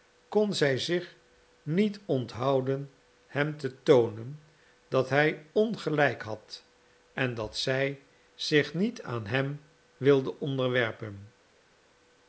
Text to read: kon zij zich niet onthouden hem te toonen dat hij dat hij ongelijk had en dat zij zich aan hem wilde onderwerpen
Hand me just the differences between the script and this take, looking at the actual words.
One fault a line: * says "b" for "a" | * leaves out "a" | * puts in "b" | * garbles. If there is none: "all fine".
* leaves out "dat hij"
* puts in "niet"